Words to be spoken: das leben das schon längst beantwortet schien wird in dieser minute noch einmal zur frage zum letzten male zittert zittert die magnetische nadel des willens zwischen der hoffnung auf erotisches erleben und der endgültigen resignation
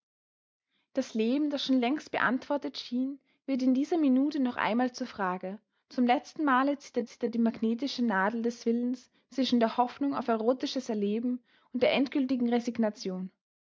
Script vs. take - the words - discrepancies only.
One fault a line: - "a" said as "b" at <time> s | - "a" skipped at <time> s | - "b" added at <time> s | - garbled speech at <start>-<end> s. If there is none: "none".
none